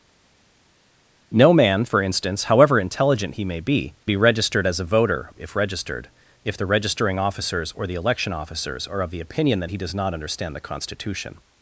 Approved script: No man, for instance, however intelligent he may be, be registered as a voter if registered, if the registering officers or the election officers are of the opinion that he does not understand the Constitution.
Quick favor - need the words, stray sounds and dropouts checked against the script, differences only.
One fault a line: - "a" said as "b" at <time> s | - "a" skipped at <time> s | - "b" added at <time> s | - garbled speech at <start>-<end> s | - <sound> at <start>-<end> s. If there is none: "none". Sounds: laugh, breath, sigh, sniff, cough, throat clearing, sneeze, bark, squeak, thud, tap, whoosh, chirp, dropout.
none